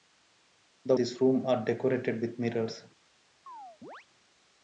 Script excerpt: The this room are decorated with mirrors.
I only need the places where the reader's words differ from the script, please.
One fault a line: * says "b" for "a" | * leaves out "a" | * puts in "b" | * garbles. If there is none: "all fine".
all fine